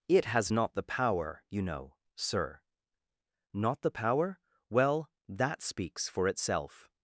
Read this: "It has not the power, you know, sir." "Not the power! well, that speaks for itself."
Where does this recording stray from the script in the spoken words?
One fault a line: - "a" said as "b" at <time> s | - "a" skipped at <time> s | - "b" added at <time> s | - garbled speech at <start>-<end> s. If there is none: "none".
none